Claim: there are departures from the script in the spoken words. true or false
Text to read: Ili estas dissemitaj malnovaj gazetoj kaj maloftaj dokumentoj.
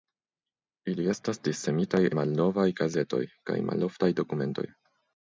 false